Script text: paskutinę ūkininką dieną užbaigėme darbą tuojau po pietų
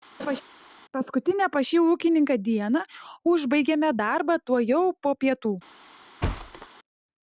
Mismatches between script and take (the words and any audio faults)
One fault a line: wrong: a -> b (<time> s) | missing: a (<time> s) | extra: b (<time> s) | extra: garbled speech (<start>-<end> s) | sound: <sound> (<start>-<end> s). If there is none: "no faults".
sound: laugh (0.2-0.4 s)
extra: pas šį (1.5 s)
sound: thud (6.2-6.7 s)